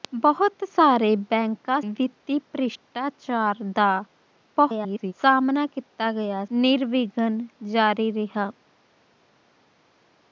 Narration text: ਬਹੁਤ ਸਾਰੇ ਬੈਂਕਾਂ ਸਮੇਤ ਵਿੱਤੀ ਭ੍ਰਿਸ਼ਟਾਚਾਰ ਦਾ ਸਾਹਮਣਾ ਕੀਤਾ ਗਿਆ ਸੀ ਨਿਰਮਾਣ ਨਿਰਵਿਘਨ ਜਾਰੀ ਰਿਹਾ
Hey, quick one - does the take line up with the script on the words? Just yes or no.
no